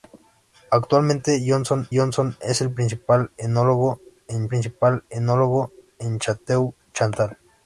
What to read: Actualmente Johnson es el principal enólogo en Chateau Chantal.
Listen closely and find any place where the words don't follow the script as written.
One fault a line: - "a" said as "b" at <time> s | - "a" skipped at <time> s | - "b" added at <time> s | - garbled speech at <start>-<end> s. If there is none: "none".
- "Johnson" added at 1.9 s
- "principal enólogo en" added at 4.5 s